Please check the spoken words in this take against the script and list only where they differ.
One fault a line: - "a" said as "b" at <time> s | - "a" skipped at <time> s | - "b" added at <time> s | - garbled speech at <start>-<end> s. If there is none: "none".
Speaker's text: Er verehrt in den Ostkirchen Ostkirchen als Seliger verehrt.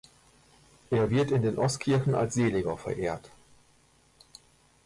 - "verehrt" said as "wird" at 1.1 s
- "Ostkirchen" skipped at 2.1 s